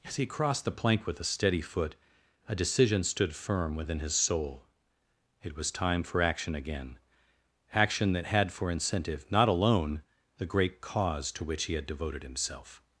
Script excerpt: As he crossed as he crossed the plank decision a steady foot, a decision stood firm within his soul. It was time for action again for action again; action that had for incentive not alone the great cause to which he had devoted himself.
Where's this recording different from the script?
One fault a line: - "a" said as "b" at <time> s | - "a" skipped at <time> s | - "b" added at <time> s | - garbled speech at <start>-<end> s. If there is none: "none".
- "as he crossed" skipped at 0.7 s
- "decision" said as "with" at 1.1 s
- "for action again" skipped at 7.0 s